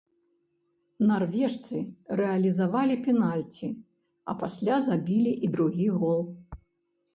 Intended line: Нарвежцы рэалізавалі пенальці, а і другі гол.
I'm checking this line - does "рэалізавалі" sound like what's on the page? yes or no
yes